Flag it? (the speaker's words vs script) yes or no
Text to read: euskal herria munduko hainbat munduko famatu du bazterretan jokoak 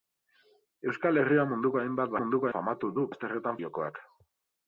no